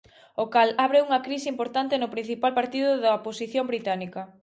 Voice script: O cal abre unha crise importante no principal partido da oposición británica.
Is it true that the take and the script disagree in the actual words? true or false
false